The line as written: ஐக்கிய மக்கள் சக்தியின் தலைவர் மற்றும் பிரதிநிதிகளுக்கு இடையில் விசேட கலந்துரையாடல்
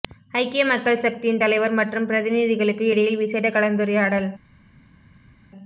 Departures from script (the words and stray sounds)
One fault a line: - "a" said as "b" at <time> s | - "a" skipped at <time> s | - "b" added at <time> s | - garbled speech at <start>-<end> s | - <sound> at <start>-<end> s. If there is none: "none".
none